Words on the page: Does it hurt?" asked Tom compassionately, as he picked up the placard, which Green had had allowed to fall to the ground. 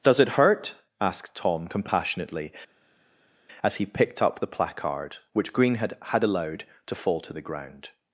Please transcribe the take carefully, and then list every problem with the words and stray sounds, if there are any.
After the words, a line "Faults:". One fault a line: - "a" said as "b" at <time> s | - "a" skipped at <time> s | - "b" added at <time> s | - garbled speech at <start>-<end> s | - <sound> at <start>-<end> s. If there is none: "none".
Does it hurt?" asked Tom compassionately, as he picked up the placard, which Green had had allowed to fall to the ground.
Faults:
none